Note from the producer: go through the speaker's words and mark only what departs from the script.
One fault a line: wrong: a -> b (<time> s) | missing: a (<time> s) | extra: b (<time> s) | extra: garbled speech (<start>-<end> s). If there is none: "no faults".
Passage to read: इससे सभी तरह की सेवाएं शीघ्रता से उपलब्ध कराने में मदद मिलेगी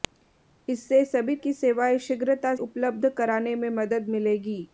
missing: तरह (1.4 s)
missing: से (2.5 s)